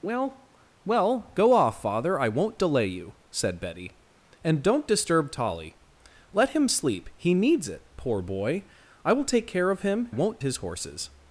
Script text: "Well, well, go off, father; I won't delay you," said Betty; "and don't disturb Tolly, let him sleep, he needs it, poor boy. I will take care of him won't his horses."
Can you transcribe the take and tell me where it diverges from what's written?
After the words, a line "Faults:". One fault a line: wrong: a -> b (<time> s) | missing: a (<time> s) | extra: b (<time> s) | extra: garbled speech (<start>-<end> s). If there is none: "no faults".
"Well, well, go off, father; I won't delay you," said Betty; "and don't disturb Tolly, let him sleep, he needs it, poor boy. I will take care of him won't his horses."
Faults:
no faults